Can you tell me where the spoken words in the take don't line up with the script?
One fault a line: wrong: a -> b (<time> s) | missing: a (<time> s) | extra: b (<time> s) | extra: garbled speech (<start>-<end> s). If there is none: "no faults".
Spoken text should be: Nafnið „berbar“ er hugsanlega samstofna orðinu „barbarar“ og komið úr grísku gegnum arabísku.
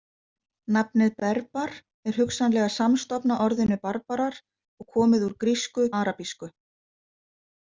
missing: gegnum (5.9 s)